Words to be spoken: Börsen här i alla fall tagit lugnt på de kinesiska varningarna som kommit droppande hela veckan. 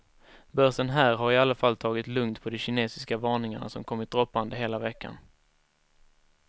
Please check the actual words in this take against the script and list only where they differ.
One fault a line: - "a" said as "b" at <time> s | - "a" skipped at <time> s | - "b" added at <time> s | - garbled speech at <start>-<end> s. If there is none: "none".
- "har" added at 1.1 s